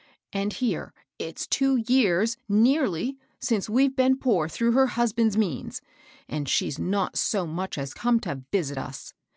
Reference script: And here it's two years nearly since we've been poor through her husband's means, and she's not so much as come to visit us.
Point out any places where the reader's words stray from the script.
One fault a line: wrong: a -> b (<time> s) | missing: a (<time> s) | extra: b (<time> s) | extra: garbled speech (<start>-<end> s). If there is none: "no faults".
no faults